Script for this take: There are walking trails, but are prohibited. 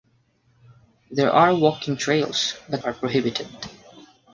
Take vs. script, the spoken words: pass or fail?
pass